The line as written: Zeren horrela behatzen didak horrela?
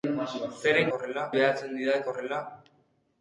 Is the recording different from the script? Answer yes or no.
no